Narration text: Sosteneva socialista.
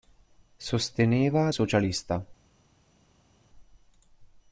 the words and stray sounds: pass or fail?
pass